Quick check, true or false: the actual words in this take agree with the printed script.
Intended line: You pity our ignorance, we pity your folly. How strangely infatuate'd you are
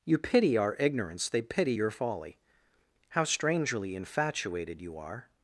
false